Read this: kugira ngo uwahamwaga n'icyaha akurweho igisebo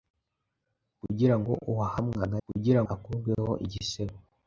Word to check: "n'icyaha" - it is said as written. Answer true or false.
false